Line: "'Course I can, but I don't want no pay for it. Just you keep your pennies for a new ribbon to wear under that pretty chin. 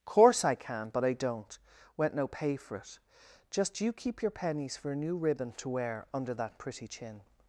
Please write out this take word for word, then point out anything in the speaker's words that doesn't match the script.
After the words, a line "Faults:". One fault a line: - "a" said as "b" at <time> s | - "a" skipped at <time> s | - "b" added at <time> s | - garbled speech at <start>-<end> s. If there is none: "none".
"'Course I can, but I don't went no pay for it. Just you keep your pennies for a new ribbon to wear under that pretty chin.
Faults:
- "want" said as "went" at 2.0 s